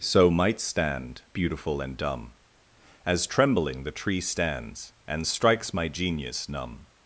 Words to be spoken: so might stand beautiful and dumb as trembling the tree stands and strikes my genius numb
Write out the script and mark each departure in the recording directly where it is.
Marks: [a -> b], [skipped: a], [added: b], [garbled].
so might stand beautiful and dumb as trembling the tree stands and strikes my genius numb